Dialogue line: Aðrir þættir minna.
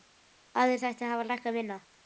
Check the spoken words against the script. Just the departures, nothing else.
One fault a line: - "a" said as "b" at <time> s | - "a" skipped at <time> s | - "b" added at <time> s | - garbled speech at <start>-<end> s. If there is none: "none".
- "hafa lækkað" added at 1.1 s